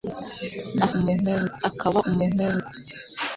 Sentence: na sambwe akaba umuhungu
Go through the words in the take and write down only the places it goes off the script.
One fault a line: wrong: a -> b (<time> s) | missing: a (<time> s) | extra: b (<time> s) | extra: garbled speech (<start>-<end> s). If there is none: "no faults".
wrong: sambwe -> umuhungu (1.0 s)